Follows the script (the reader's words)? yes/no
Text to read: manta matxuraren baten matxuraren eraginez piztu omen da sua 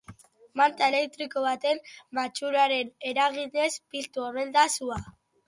no